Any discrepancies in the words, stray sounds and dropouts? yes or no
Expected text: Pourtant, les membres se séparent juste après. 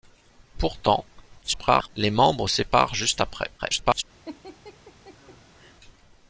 yes